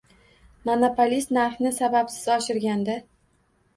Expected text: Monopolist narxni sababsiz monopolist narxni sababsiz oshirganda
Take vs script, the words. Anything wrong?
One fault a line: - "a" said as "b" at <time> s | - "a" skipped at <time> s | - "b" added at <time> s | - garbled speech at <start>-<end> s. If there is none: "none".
- "monopolist narxni sababsiz" skipped at 2.2 s